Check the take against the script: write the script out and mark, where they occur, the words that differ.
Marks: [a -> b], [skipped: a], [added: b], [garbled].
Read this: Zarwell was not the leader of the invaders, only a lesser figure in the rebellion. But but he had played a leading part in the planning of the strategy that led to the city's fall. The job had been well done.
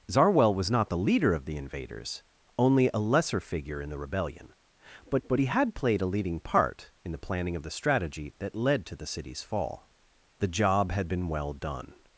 Zarwell was not the leader of the invaders, only a lesser figure in the rebellion. But but he had played a leading part in the planning of the strategy that led to the city's fall. The job had been well done.